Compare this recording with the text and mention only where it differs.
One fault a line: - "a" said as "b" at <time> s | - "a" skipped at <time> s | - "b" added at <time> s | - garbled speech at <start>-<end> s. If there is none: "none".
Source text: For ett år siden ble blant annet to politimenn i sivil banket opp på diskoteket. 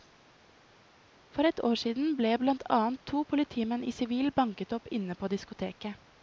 - "inne" added at 4.9 s